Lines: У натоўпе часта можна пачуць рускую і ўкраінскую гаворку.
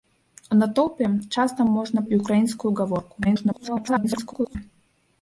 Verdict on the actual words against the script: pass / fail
fail